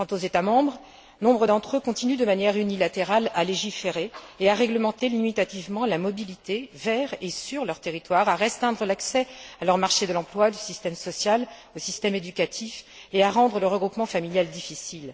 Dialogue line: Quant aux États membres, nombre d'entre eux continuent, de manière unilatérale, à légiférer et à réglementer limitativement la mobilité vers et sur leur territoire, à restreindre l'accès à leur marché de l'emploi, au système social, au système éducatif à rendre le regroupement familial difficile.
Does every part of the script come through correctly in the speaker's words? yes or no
no